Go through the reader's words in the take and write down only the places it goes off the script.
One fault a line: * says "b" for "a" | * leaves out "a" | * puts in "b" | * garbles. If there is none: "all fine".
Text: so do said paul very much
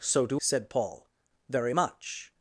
all fine